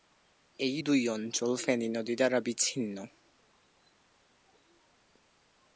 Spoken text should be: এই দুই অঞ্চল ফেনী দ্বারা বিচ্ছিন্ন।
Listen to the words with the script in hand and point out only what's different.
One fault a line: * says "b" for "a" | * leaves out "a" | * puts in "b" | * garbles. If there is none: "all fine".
* puts in "নদী"